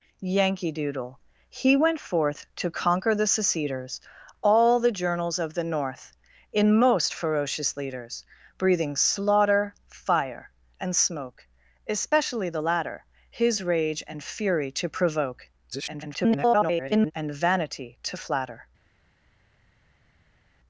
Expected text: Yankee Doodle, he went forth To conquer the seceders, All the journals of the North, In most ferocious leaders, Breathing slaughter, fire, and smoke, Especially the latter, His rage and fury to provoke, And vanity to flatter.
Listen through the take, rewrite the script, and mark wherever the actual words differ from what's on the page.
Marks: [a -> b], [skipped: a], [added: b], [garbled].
Yankee Doodle, he went forth To conquer the seceders, All the journals of the North, In most ferocious leaders, Breathing slaughter, fire, and smoke, Especially the latter, His rage and fury to provoke, [garbled] And vanity to flatter.